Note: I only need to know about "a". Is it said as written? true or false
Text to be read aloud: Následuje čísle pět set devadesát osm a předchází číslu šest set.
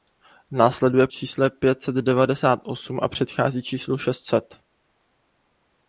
true